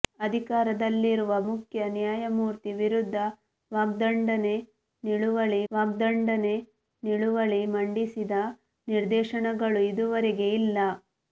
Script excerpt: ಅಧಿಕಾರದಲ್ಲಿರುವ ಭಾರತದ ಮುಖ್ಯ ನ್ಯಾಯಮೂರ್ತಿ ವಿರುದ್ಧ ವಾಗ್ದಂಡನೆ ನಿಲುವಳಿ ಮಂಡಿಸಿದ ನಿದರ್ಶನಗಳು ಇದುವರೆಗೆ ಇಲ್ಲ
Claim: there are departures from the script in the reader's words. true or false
true